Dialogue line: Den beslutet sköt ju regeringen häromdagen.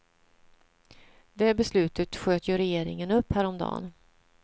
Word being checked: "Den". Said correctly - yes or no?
no